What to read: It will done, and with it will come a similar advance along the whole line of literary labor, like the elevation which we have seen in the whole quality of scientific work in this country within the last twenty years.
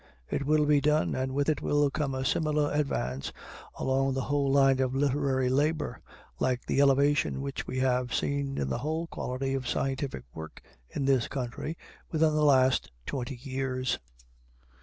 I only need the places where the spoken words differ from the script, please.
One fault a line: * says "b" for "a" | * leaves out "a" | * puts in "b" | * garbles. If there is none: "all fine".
* puts in "be"